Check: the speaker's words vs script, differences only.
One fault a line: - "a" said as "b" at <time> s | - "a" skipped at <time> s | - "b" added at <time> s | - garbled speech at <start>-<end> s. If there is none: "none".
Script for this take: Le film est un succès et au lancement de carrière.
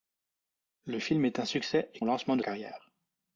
none